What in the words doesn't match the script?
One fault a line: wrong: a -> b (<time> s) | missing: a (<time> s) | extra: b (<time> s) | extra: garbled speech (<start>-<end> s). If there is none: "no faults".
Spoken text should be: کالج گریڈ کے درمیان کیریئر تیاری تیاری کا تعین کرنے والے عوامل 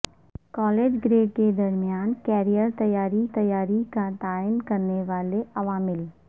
no faults